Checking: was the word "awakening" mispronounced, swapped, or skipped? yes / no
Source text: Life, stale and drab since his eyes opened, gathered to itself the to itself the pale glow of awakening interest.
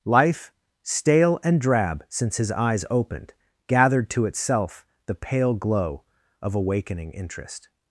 no